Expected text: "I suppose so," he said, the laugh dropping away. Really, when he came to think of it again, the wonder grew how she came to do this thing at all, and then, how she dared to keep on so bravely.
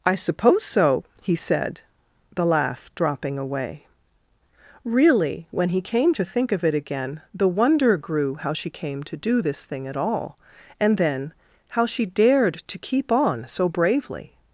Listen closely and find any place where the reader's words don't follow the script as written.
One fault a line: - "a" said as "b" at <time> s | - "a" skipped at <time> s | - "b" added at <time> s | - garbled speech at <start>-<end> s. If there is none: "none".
none